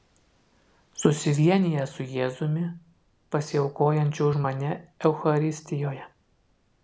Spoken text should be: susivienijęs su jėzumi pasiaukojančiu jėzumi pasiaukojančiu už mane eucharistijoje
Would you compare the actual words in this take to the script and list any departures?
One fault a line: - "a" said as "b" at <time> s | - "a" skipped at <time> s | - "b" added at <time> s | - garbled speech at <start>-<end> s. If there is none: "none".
- "jėzumi pasiaukojančiu" skipped at 4.3 s